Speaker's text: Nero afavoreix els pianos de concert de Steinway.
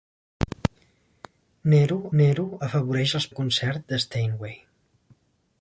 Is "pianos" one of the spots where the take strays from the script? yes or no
yes